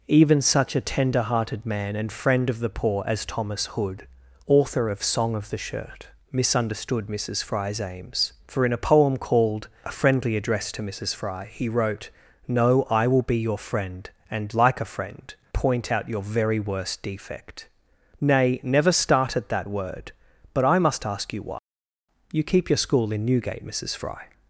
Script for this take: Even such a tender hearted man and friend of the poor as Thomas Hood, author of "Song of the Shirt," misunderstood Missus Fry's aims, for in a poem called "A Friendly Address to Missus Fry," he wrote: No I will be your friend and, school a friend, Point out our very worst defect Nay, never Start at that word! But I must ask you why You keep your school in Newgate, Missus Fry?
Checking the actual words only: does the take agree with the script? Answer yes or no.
no